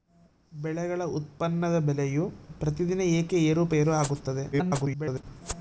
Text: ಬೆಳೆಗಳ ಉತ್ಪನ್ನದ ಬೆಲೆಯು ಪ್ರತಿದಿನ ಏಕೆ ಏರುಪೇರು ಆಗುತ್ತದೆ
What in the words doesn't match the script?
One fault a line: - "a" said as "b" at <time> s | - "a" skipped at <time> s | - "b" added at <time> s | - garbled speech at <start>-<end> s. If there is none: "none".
- garbled speech at 4.5-5.2 s